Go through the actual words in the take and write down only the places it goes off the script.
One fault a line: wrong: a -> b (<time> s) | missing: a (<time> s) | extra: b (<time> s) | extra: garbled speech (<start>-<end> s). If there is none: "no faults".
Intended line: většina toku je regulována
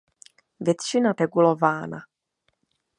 missing: toku je (1.1 s)